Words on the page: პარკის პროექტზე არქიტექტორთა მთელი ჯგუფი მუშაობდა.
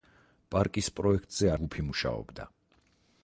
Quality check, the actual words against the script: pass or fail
fail